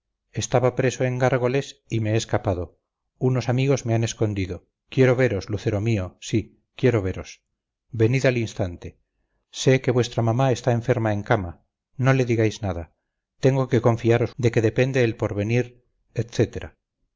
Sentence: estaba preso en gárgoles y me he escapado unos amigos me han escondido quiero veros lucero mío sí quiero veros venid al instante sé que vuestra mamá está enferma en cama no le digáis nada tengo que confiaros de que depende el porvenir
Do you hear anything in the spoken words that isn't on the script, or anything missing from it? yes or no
no